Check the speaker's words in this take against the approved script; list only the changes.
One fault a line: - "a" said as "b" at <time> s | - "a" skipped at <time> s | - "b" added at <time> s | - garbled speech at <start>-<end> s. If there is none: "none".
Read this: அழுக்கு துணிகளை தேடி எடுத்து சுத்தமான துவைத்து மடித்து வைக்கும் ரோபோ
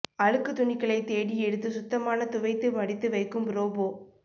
none